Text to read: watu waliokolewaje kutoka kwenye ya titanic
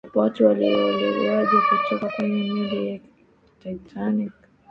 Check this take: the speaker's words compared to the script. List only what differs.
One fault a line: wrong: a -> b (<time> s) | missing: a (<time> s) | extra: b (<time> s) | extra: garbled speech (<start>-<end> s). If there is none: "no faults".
extra: meli (2.5 s)